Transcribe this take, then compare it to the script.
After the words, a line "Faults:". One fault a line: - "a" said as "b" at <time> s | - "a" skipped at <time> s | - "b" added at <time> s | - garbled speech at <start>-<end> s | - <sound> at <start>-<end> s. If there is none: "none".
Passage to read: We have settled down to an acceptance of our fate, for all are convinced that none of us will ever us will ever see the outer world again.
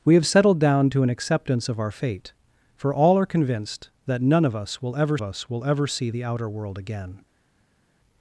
We have settled down to an acceptance of our fate, for all are convinced that none of us will ever us will ever see the outer world again.
Faults:
none